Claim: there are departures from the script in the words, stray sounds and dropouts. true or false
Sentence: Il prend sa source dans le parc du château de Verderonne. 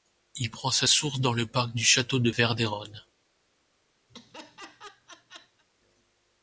true